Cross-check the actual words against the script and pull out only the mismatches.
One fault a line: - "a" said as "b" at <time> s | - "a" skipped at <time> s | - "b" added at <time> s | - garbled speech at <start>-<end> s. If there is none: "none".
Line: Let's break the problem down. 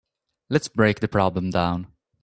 none